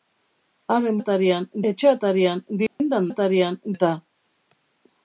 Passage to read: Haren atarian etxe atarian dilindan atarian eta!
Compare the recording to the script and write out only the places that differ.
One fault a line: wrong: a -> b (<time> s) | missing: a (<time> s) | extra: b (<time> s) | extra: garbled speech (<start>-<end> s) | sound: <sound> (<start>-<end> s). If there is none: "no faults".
sound: dropout (2.7-2.8 s)